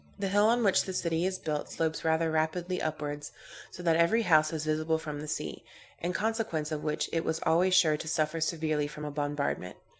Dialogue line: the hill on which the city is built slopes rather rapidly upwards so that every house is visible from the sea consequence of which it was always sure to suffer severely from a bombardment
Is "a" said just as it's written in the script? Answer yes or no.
yes